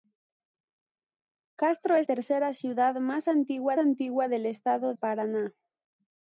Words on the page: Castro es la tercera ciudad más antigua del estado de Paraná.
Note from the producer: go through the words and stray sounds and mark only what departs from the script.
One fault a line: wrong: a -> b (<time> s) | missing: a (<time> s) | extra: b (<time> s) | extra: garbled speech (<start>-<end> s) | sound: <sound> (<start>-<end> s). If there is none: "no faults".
missing: la (2.1 s)
extra: antigua (3.8 s)
missing: de (4.9 s)